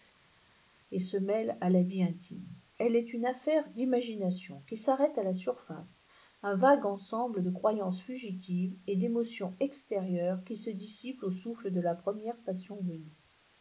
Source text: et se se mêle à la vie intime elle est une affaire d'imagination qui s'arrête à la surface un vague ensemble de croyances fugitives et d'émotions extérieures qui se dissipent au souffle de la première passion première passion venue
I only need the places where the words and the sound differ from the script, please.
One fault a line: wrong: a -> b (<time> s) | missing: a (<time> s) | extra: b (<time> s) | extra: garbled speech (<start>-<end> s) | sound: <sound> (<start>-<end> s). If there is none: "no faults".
missing: se (1.2 s)
missing: première passion (12.8 s)